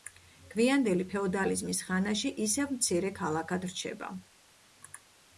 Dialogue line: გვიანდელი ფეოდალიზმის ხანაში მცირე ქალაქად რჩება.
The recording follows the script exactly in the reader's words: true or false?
false